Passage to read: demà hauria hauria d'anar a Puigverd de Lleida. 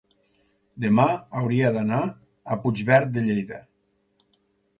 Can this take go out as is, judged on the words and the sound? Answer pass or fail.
fail